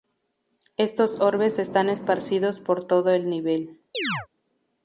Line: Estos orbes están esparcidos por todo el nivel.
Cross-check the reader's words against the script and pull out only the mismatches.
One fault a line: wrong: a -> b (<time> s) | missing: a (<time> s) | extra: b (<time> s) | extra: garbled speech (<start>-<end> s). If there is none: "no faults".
no faults